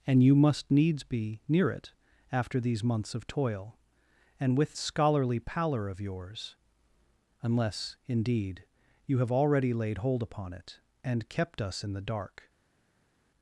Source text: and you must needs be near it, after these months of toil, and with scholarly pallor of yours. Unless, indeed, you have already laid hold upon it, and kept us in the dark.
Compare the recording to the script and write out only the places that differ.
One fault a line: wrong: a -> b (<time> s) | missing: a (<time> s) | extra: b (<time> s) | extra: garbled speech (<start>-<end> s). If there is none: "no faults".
no faults